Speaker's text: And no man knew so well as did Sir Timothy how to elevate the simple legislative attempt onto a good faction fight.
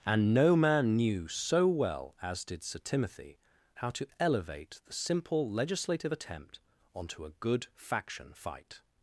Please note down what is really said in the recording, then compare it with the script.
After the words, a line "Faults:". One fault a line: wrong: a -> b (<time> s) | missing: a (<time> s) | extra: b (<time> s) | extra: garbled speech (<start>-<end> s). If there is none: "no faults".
And no man knew so well as did Sir Timothy how to elevate the simple legislative attempt onto a good faction fight.
Faults:
no faults